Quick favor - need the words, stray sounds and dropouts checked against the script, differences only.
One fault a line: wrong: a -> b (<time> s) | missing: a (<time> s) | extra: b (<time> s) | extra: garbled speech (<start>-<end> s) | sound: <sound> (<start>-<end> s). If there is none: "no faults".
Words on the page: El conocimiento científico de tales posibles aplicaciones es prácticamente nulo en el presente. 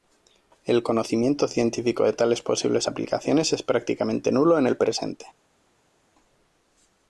no faults